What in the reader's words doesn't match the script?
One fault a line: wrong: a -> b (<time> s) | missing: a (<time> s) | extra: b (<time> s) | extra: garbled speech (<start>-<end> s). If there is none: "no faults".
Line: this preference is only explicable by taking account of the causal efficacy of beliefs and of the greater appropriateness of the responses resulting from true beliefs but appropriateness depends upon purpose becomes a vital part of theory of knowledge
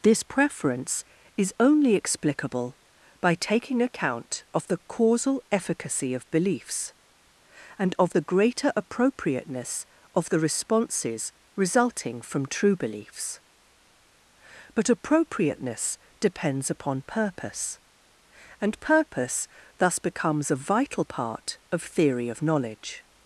extra: and purpose thus (18.6 s)